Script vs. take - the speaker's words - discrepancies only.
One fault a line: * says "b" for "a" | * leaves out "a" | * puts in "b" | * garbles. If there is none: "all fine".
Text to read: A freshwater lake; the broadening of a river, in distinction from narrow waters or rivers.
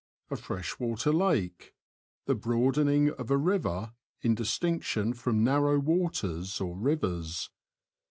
all fine